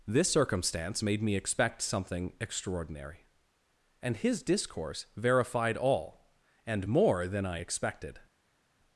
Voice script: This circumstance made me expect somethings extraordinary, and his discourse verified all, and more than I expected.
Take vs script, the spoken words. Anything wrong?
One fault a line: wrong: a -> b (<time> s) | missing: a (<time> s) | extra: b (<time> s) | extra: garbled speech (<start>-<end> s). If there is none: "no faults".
wrong: somethings -> something (1.8 s)